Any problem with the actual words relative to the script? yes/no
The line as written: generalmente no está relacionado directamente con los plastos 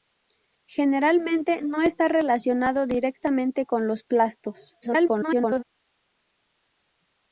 yes